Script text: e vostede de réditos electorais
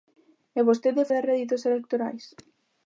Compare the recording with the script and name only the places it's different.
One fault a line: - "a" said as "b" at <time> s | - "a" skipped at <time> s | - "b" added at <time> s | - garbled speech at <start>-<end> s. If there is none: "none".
none